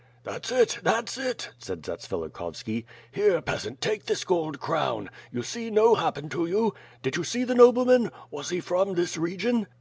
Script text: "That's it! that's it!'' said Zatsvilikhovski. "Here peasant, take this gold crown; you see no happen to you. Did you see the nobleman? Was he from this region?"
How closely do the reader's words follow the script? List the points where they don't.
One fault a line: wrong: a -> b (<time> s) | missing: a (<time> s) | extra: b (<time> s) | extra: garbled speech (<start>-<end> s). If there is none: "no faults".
no faults